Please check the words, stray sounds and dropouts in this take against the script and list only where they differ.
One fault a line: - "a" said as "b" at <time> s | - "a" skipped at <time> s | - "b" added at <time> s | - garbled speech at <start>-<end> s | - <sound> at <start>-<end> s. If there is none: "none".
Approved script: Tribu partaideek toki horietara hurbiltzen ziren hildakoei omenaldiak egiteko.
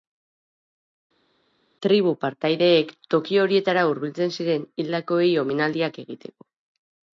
none